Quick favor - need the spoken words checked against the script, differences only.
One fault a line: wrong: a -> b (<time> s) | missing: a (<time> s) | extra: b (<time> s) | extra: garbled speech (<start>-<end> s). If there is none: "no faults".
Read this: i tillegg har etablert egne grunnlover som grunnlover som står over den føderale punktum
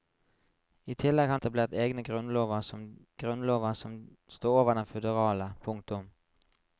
no faults